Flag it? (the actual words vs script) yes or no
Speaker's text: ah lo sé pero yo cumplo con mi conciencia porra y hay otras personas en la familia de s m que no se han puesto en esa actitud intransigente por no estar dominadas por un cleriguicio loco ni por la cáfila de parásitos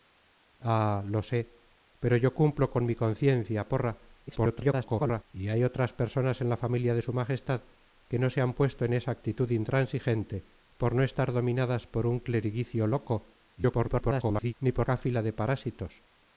yes